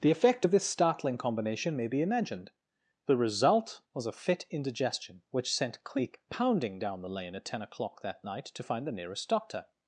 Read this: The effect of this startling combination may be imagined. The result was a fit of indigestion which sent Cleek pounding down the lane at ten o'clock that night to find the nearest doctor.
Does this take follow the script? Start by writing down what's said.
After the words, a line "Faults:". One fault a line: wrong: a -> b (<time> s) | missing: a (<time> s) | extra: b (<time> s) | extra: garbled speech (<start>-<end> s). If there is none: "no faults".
The effect of this startling combination may be imagined. The result was a fit indigestion which sent Cleek pounding down the lane at ten o'clock that night to find the nearest doctor.
Faults:
missing: of (4.4 s)